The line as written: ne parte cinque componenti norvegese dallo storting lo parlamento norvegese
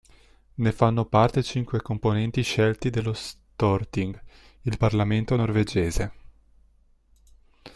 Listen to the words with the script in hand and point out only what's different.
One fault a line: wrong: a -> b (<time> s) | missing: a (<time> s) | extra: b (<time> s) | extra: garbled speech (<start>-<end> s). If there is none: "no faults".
extra: fanno (0.7 s)
wrong: norvegese -> scelti (2.4 s)
wrong: lo -> il (4.6 s)